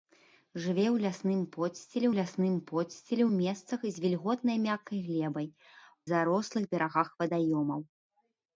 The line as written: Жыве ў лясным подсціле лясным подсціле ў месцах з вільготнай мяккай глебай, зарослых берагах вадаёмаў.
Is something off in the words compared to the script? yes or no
no